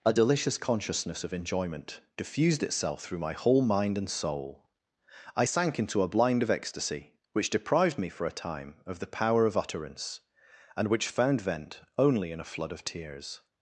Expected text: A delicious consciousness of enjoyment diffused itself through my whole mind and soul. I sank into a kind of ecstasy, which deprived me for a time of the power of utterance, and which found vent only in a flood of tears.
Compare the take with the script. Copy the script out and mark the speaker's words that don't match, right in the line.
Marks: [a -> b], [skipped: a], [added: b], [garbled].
A delicious consciousness of enjoyment diffused itself through my whole mind and soul. I sank into a [kind -> blind] of ecstasy, which deprived me for a time of the power of utterance, and which found vent only in a flood of tears.